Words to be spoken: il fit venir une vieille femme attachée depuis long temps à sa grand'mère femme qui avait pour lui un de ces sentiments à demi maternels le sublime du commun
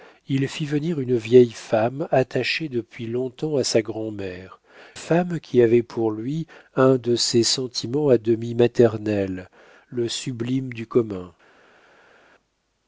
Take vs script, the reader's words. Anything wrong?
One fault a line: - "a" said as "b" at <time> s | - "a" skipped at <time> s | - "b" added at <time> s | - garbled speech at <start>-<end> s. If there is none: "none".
none